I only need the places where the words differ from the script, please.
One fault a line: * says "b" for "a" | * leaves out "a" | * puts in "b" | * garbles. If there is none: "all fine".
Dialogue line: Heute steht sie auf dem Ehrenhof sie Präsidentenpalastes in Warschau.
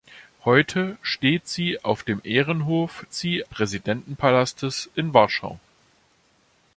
all fine